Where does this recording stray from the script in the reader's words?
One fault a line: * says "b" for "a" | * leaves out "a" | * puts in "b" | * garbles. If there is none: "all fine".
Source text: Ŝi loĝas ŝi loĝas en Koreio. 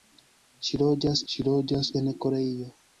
all fine